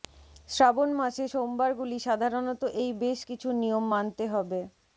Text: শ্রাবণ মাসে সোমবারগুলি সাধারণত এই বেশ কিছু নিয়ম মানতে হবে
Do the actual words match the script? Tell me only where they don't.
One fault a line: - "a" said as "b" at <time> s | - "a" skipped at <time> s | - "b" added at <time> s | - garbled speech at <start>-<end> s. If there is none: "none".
none